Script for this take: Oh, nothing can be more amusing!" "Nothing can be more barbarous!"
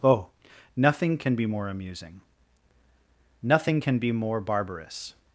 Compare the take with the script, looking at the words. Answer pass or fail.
pass